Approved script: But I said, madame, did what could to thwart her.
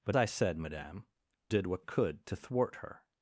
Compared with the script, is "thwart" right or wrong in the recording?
right